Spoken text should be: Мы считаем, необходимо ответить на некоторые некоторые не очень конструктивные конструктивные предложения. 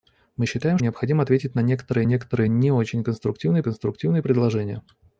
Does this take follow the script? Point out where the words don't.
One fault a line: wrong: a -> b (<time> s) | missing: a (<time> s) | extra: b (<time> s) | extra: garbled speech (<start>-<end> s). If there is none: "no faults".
no faults